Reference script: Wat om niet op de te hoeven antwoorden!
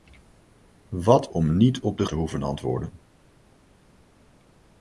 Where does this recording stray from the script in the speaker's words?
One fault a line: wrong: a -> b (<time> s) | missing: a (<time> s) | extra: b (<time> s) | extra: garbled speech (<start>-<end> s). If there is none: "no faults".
no faults